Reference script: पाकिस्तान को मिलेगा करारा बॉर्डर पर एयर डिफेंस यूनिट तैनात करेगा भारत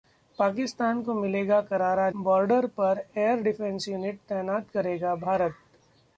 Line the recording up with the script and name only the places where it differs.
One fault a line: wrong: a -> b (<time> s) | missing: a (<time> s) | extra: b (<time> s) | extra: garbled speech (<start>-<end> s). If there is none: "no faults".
no faults